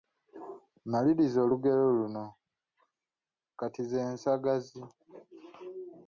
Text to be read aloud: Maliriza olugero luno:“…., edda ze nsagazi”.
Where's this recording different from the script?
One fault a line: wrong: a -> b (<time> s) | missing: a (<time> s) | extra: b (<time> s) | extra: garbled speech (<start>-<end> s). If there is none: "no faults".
wrong: edda -> kati (3.6 s)